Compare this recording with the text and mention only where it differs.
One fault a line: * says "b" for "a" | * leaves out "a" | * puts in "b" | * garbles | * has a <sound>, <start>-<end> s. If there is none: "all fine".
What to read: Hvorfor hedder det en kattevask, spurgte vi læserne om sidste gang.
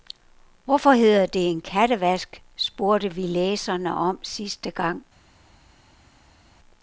all fine